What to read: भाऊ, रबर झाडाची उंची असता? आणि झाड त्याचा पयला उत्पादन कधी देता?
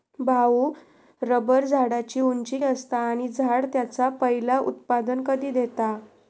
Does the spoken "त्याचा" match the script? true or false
true